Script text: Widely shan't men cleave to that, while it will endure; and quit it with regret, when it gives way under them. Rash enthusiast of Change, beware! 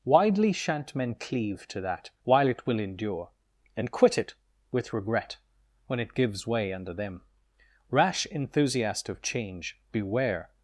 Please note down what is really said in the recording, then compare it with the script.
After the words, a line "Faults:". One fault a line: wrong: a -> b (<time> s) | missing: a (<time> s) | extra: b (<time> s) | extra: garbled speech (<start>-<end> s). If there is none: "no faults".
Widely shan't men cleave to that, while it will endure; and quit it with regret, when it gives way under them. Rash enthusiast of Change, beware!
Faults:
no faults